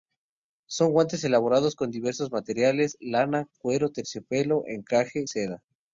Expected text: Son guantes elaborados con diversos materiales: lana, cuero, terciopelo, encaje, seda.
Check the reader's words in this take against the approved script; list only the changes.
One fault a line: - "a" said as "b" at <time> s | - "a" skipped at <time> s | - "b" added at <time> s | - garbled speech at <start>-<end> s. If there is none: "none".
none